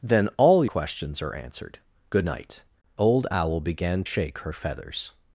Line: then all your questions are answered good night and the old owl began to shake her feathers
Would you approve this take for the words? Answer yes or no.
no